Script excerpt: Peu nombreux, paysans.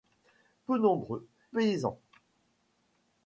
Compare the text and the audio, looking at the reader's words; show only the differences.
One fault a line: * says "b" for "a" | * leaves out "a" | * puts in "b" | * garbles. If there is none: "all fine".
all fine